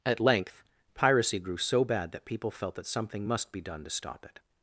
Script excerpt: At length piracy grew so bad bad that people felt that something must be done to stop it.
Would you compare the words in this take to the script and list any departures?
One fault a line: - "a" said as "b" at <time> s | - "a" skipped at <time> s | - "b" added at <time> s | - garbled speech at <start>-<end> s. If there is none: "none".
- "bad" skipped at 2.1 s